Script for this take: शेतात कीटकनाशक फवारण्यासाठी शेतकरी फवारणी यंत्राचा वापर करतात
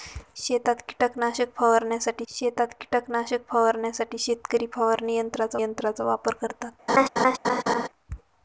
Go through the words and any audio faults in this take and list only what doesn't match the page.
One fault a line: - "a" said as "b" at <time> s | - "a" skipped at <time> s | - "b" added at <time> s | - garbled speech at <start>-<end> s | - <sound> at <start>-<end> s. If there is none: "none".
- "शेतात कीटकनाशक फवारण्यासाठी" added at 2.3 s
- "यंत्राचा" added at 5.6 s
- laugh at 6.9-7.9 s